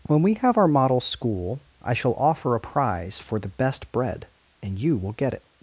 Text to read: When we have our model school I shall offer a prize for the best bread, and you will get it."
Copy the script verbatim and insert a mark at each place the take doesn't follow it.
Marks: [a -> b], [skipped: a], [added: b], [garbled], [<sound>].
When we have our model school I shall offer a prize for the best bread, and you will get it."